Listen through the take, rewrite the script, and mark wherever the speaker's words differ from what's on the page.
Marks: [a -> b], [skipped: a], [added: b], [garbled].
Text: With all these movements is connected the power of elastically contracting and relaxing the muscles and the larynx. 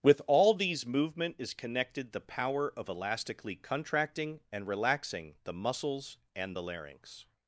With all these [movements -> movement] is connected the power of elastically contracting and relaxing the muscles and the larynx.